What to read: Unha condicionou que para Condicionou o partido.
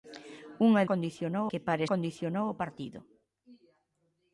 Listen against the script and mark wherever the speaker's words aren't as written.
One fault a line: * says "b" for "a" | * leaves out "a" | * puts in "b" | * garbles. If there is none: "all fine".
all fine